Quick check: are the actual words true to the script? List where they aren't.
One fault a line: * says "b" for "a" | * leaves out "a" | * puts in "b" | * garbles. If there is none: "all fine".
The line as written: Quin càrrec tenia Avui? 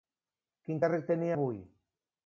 all fine